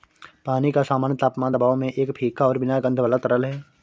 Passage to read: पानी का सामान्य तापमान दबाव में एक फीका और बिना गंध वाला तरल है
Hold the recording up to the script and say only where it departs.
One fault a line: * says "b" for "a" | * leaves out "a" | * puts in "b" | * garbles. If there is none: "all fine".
all fine